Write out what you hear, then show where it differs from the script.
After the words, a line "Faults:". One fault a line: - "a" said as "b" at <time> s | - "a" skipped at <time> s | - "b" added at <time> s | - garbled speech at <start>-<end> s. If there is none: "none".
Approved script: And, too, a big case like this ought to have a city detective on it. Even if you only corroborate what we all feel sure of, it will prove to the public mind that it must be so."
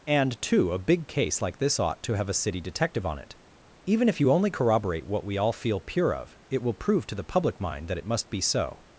And, too, a big case like this ought to have a city detective on it. Even if you only corroborate what we all feel pure of, it will prove to the public mind that it must be so."
Faults:
- "sure" said as "pure" at 5.8 s